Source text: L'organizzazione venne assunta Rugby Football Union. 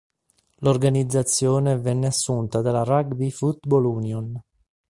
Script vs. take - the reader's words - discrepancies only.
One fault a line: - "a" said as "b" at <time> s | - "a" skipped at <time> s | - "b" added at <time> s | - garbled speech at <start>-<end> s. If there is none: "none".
- "dalla" added at 2.6 s